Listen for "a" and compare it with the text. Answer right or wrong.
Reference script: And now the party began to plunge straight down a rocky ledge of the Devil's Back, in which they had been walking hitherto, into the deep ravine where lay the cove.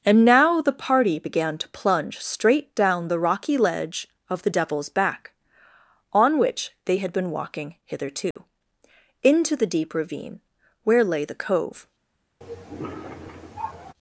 wrong